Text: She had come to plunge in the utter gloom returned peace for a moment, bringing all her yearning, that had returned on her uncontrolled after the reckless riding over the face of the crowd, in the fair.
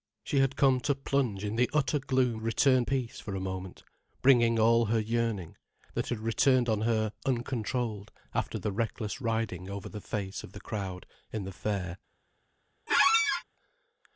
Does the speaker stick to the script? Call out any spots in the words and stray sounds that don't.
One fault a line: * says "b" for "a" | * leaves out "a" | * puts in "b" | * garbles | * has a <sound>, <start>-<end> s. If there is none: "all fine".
* has a squeak, 12.9-13.4 s